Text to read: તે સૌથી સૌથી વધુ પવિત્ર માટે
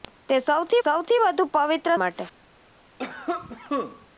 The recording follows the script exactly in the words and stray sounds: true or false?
false